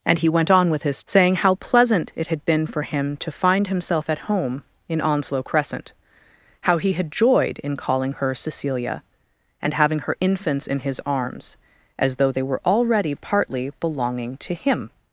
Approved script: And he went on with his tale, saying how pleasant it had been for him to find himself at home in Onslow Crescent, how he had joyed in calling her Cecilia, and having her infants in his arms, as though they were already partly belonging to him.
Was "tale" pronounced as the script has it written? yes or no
no